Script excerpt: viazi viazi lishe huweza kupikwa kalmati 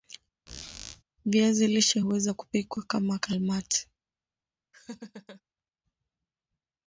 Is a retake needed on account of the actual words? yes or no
yes